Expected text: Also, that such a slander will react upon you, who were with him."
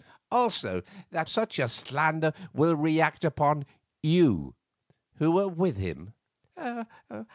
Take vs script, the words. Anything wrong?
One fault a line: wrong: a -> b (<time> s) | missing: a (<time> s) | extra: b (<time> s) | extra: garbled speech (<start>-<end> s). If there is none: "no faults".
no faults